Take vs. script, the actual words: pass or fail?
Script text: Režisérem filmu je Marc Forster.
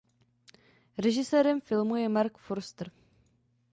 pass